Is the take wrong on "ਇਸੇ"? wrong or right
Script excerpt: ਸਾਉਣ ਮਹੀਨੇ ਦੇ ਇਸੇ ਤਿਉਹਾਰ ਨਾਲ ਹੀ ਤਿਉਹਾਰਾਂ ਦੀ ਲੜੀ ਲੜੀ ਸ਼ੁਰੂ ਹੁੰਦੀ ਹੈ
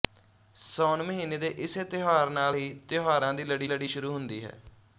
right